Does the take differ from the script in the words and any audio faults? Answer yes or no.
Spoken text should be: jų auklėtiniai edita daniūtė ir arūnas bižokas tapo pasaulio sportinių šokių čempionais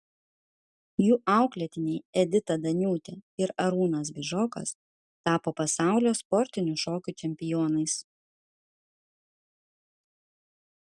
no